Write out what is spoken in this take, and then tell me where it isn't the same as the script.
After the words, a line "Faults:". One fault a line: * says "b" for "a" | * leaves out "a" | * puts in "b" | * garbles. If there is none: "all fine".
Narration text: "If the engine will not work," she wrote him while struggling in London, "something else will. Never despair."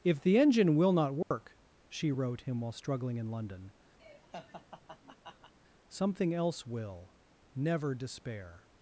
"If the engine will not work," she wrote him while struggling in London, "something else will. Never despair."
Faults:
all fine